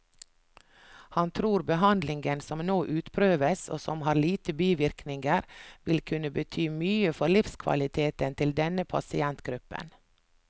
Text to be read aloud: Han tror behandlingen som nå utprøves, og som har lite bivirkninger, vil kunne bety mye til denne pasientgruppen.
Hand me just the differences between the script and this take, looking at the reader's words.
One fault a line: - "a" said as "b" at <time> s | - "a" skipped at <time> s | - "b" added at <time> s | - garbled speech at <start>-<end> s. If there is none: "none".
- "for livskvaliteten" added at 7.2 s